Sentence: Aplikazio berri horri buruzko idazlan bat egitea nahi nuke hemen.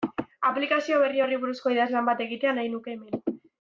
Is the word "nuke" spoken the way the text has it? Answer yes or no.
yes